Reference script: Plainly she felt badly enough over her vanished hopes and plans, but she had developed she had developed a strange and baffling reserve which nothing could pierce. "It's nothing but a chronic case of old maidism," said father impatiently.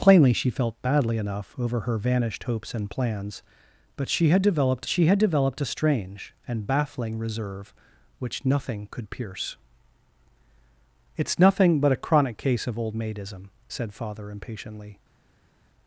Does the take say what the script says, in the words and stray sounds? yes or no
yes